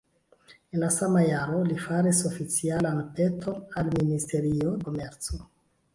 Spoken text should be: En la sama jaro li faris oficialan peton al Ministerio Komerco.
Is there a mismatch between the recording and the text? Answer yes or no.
no